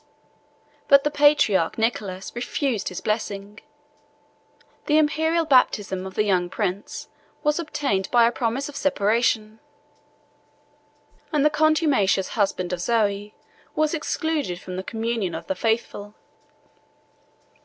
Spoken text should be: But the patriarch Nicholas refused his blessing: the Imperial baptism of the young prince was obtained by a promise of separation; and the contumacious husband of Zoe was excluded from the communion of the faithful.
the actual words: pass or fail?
pass